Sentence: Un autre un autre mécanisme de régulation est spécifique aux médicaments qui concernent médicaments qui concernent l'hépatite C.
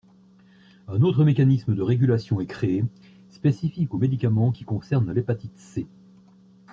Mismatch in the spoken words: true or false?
true